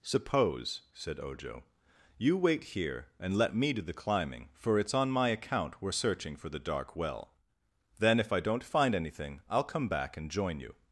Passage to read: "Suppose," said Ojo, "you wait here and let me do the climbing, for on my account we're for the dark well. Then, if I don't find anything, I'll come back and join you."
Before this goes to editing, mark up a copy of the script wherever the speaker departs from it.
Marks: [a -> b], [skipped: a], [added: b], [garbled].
"Suppose," said Ojo, "you wait here and let me do the climbing, for [added: it's] on my account we're [added: searching] for the dark well. Then, if I don't find anything, I'll come back and join you."